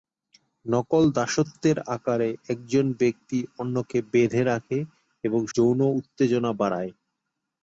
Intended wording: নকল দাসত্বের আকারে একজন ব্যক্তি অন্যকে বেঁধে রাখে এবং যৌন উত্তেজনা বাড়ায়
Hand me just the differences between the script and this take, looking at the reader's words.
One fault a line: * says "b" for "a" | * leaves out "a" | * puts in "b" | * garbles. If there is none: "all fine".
all fine